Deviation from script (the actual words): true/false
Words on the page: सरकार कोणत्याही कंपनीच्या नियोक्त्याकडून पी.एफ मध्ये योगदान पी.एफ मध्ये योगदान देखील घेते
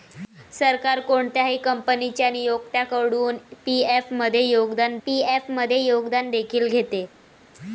false